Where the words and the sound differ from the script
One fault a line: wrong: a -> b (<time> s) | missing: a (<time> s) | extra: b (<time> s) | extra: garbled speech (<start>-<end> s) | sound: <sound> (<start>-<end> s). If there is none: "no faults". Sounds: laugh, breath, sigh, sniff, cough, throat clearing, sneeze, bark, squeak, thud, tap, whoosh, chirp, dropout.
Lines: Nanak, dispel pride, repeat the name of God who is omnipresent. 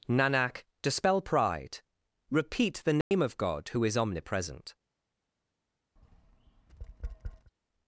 sound: dropout (3.0-3.1 s)
sound: tap (6.0-7.5 s)